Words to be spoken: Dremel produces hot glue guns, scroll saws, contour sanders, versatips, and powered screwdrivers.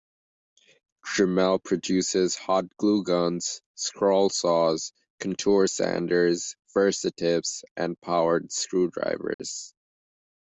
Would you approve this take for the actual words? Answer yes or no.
yes